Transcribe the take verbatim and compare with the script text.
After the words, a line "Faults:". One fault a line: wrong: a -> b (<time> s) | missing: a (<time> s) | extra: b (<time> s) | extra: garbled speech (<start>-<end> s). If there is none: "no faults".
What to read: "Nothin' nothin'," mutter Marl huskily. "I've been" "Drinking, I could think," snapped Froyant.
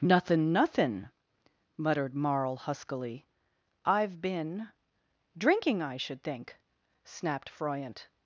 "Nothin' nothin'," muttered Marl huskily. "I've been" "Drinking, I should think," snapped Froyant.
Faults:
wrong: mutter -> muttered (1.8 s)
wrong: could -> should (6.0 s)